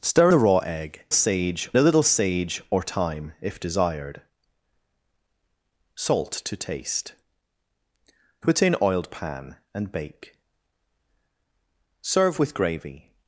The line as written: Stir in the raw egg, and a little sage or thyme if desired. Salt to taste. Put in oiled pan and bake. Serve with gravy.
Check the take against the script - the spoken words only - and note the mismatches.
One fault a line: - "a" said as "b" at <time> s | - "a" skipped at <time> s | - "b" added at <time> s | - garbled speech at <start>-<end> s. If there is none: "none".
- "in" skipped at 0.3 s
- "and" said as "sage" at 1.1 s